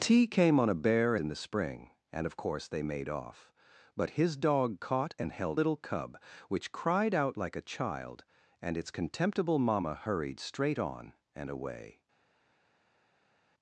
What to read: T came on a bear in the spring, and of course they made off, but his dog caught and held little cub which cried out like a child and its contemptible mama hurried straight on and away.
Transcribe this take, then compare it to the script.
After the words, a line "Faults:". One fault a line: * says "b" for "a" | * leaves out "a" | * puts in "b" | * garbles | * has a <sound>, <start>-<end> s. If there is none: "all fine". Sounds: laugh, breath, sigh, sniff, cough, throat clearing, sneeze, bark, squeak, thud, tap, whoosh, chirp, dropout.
T came on a bear in the spring, and of course they made off, but his dog caught and held little cub which cried out like a child and its contemptible mama hurried straight on and away.
Faults:
all fine